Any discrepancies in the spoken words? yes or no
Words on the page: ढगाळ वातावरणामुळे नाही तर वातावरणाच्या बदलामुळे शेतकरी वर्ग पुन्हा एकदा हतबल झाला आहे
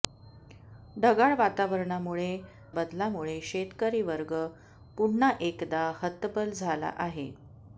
yes